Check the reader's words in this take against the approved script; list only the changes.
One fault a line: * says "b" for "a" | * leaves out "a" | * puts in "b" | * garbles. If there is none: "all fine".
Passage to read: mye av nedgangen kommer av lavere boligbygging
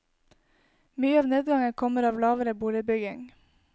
all fine